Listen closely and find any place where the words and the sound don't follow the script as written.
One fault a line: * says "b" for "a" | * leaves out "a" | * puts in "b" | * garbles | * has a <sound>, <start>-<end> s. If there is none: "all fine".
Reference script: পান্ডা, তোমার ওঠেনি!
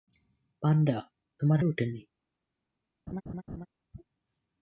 * has a laugh, 3.1-3.7 s